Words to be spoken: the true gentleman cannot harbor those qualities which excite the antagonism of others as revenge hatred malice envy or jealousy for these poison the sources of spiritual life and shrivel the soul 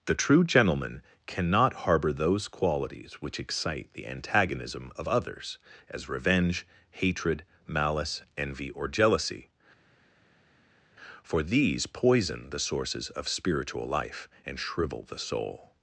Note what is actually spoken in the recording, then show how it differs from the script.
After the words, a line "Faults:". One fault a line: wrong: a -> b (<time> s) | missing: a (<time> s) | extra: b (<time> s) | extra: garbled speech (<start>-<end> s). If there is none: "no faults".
the true gentleman cannot harbor those qualities which excite the antagonism of others as revenge hatred malice envy or jealousy for these poison the sources of spiritual life and shrivel the soul
Faults:
no faults